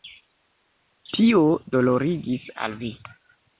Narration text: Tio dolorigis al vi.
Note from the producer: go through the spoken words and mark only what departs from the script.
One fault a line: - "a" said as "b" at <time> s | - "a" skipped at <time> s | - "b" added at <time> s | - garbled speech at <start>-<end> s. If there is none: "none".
none